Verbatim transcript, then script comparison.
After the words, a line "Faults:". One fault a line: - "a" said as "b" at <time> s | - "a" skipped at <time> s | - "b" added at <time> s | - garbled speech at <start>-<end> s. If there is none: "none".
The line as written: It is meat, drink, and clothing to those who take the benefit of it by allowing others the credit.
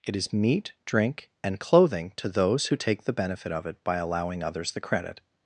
It is meat, drink, and clothing to those who take the benefit of it by allowing others the credit.
Faults:
none